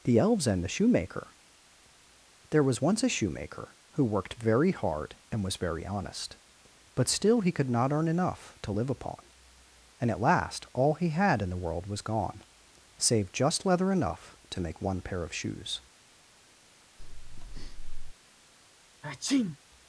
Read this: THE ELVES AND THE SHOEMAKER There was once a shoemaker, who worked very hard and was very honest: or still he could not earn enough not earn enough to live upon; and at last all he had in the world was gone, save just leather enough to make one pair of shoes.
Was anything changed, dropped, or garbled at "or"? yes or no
yes